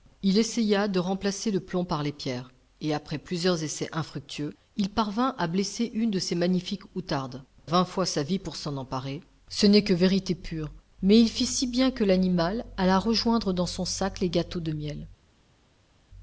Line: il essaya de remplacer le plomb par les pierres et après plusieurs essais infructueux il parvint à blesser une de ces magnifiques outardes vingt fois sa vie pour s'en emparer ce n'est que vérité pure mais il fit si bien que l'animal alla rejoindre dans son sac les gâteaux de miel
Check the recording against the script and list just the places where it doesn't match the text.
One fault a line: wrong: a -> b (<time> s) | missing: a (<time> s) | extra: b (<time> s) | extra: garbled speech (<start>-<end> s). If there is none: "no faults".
no faults